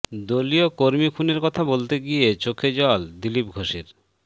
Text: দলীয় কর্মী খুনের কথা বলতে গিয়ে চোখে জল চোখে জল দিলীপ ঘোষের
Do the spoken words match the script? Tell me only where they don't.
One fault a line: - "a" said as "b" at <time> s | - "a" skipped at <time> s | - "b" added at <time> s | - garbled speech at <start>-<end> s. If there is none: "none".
- "চোখে জল" skipped at 3.0 s